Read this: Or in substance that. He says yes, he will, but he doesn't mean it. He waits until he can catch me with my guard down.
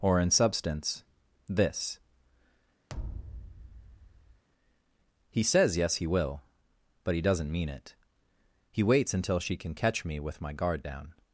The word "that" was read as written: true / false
false